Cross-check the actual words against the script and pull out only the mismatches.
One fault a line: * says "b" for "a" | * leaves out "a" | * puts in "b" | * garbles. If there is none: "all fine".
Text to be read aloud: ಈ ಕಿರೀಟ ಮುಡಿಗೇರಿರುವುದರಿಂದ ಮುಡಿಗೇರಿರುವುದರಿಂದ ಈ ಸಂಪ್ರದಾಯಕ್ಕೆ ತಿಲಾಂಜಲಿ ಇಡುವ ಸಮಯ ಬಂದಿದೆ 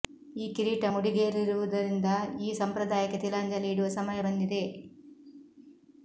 * leaves out "ಮುಡಿಗೇರಿರುವುದರಿಂದ"